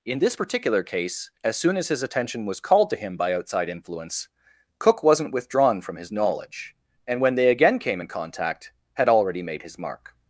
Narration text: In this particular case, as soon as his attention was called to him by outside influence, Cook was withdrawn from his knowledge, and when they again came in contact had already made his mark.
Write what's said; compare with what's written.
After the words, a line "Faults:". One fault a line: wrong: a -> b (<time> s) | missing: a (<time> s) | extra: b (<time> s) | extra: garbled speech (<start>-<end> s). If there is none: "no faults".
In this particular case, as soon as his attention was called to him by outside influence, Cook wasn't withdrawn from his knowledge, and when they again came in contact had already made his mark.
Faults:
wrong: was -> wasn't (5.0 s)